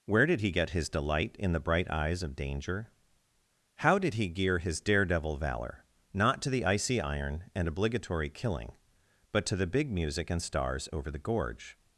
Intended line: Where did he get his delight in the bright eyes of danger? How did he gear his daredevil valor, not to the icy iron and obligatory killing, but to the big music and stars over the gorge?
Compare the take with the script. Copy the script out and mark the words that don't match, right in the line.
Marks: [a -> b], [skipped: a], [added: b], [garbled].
Where did he get his delight in the bright eyes of danger? How did he gear his daredevil valor, not to the icy iron and obligatory killing, but to the big music and stars over the gorge?